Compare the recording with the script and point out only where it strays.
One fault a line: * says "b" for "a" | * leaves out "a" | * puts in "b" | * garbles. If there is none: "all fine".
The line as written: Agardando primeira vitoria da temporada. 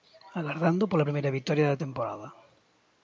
* puts in "pola"